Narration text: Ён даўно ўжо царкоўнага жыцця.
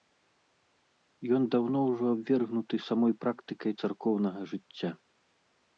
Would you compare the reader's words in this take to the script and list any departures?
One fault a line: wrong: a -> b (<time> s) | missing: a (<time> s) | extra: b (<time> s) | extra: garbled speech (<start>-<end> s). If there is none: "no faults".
extra: абвергнуты самой практыкай (2.1 s)